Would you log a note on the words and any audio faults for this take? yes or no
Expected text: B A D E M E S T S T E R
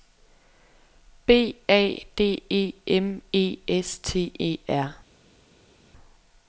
yes